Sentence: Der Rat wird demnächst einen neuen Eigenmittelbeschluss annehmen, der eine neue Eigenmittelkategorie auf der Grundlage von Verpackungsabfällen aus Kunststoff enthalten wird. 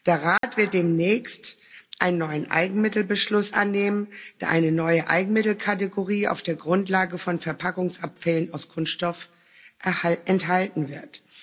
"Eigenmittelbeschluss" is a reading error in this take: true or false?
false